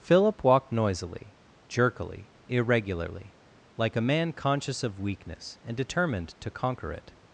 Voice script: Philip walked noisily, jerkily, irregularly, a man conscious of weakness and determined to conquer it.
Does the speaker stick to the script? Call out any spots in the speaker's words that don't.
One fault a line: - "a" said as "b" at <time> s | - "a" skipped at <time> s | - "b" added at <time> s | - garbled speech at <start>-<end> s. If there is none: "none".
- "like" added at 3.8 s